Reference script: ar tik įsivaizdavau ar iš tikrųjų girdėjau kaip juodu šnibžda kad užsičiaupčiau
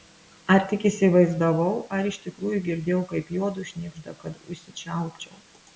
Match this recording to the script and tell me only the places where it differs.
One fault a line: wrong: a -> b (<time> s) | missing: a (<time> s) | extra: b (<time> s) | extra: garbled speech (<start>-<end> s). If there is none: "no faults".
no faults